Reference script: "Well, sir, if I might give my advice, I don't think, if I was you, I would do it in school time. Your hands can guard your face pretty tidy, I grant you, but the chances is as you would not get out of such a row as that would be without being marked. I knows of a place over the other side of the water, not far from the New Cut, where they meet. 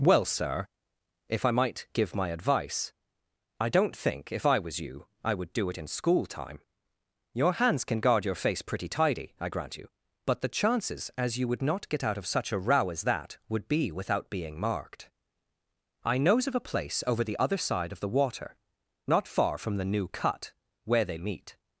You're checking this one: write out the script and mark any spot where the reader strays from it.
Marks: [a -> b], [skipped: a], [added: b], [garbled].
"Well, sir, if I might give my advice, I don't think, if I was you, I would do it in school time. Your hands can guard your face pretty tidy, I grant you, but the chances [skipped: is] as you would not get out of such a row as that would be without being marked. I knows of a place over the other side of the water, not far from the New Cut, where they meet.